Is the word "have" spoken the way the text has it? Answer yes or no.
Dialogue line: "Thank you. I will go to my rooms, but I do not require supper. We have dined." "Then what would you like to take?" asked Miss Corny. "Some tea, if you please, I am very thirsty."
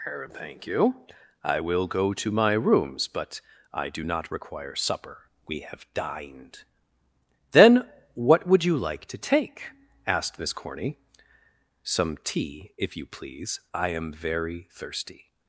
yes